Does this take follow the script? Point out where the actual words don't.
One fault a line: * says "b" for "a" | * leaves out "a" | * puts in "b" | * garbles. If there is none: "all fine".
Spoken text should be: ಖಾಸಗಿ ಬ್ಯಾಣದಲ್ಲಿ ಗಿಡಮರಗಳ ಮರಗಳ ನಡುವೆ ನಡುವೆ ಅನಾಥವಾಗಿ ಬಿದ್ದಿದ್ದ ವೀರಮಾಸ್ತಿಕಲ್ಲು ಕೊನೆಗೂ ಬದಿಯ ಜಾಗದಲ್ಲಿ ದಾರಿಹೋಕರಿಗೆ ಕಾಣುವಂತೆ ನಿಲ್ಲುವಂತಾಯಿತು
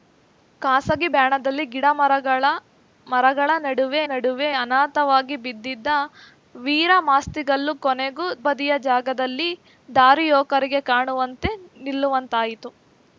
all fine